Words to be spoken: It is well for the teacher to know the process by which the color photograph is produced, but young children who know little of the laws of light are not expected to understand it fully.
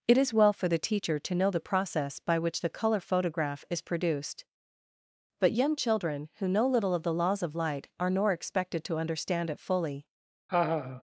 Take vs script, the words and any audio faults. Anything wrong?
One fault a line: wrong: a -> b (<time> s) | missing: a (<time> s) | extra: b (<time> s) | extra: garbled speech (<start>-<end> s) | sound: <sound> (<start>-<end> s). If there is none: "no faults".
wrong: not -> nor (8.1 s)
sound: laugh (10.5-11.0 s)